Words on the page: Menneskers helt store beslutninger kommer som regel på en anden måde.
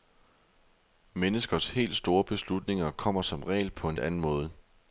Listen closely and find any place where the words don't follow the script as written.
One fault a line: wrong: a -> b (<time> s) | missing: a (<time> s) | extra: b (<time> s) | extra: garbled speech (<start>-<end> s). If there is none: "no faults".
no faults